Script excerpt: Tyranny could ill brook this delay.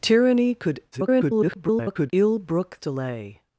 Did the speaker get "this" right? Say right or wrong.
wrong